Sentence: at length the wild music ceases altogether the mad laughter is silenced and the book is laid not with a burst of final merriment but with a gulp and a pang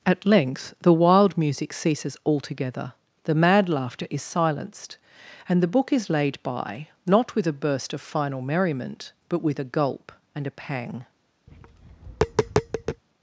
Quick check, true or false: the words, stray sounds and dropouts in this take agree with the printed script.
false